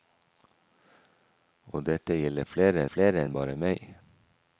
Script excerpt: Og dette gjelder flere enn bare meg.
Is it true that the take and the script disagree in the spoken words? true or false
true